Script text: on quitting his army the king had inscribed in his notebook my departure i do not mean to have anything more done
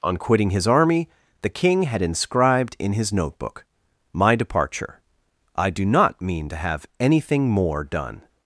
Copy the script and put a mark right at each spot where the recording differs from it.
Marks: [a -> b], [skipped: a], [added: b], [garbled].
on quitting his army the king had inscribed in his notebook my departure i do not mean to have anything more done